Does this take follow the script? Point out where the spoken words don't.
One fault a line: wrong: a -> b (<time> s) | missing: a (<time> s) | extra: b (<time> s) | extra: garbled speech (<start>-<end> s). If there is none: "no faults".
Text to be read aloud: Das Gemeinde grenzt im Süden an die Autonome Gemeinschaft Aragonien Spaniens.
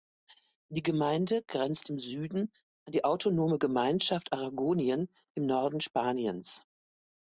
wrong: Das -> Die (0.7 s)
extra: im Norden (5.3 s)